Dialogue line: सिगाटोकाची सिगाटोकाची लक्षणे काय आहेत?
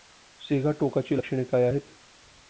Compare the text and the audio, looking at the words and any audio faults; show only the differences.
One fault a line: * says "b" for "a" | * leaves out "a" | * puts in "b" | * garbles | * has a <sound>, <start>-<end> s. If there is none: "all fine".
* leaves out "सिगाटोकाची"